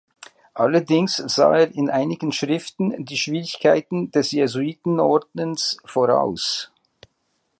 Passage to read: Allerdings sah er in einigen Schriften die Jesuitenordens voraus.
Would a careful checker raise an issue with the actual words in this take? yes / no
yes